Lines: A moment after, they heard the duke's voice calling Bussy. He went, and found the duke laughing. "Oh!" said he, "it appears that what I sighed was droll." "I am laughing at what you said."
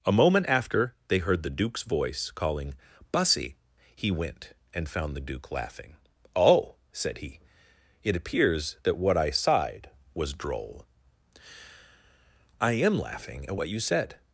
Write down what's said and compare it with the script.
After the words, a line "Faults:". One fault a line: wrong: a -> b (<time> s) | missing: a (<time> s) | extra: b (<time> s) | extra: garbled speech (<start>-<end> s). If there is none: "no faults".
A moment after, they heard the duke's voice calling Bussy. He went, and found the duke laughing. "Oh!" said he, "it appears that what I sighed was droll." "I am laughing at what you said."
Faults:
no faults